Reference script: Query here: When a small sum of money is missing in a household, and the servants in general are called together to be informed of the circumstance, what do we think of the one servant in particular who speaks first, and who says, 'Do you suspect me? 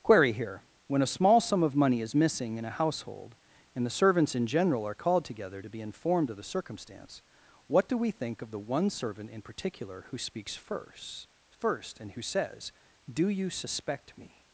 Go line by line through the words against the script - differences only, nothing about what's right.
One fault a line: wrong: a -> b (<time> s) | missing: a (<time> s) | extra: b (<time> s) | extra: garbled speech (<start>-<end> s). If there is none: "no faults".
extra: first (11.5 s)